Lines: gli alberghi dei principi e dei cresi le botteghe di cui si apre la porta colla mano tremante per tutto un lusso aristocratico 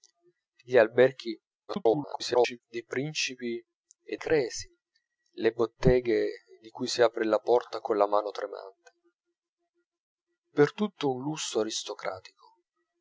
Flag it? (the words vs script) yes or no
yes